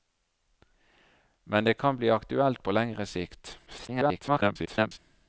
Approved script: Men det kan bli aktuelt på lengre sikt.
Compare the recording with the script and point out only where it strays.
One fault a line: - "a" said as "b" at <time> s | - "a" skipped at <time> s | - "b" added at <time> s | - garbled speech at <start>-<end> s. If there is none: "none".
- garbled speech at 3.7-5.0 s